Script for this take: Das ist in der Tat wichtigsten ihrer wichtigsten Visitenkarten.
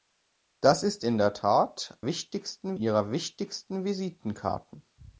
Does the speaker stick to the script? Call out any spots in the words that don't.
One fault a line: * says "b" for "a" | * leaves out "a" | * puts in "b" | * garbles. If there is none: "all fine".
all fine